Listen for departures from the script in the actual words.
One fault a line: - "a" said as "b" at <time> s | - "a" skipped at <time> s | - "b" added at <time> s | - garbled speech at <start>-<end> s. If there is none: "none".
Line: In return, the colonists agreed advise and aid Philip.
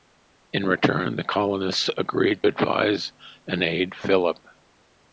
none